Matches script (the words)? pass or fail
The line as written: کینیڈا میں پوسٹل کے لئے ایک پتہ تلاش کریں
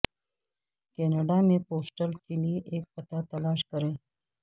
pass